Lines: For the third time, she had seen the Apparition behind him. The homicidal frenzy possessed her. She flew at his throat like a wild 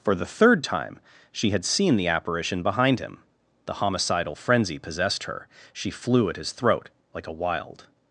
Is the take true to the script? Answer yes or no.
yes